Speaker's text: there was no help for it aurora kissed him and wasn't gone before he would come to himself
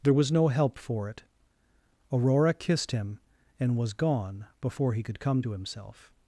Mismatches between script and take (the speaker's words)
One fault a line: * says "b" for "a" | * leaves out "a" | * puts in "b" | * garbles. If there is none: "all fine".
* says "was" for "wasn't"
* says "could" for "would"